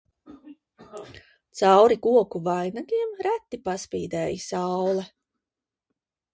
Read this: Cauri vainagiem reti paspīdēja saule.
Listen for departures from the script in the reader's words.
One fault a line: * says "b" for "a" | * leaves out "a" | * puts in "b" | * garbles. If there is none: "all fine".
* puts in "koku"